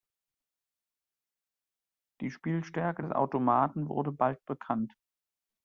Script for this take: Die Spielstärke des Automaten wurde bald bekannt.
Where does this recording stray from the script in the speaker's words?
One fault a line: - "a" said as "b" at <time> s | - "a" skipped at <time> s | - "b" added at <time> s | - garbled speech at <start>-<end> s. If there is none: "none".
none